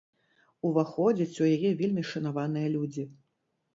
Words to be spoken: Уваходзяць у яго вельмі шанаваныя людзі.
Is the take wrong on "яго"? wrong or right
wrong